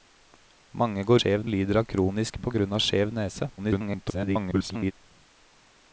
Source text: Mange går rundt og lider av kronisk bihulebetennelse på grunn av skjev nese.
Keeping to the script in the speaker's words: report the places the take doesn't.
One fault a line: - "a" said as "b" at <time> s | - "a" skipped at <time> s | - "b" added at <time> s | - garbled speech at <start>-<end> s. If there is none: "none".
- "rundt" said as "skjev" at 1.2 s
- "bihulebetennelse" skipped at 2.4 s
- garbled speech at 3.6-4.9 s